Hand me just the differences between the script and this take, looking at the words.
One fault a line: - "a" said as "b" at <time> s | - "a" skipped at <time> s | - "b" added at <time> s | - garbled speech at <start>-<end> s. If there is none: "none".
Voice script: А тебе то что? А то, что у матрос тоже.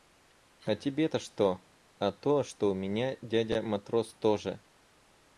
- "меня дядя" added at 2.7 s